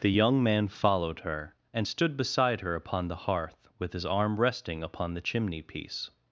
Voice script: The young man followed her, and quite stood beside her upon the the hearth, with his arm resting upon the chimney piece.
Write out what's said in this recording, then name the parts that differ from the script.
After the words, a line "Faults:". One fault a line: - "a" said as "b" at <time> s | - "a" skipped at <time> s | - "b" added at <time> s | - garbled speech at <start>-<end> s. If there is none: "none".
The young man followed her, and stood beside her upon the hearth, with his arm resting upon the chimney piece.
Faults:
- "quite" skipped at 1.9 s
- "the" skipped at 3.3 s